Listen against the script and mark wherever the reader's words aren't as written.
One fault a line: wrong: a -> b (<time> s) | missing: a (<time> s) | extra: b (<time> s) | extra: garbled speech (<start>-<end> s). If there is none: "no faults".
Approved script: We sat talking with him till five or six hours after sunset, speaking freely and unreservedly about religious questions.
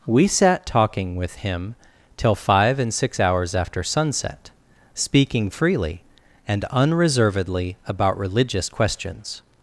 wrong: or -> and (2.8 s)